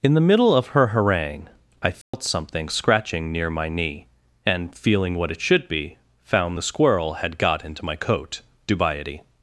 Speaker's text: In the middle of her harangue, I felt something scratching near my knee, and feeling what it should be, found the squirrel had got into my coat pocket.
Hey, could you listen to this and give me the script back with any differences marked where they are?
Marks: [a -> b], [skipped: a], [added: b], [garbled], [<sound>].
In the middle of her harangue, I felt [dropout] something scratching near my knee, and feeling what it should be, found the squirrel had got into my coat [pocket. -> dubiety]